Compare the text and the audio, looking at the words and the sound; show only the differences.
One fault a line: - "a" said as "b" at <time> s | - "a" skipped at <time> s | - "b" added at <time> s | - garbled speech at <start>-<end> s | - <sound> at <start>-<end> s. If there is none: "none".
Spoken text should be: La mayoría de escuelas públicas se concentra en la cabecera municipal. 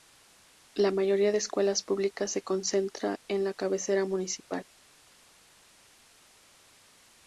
none